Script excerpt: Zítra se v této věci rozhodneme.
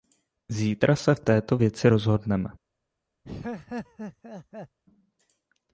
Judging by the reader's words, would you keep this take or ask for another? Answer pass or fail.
pass